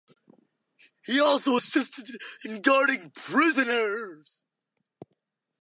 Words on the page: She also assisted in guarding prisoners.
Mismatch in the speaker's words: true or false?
true